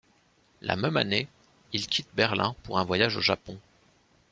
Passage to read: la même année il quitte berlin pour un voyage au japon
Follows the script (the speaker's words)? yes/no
yes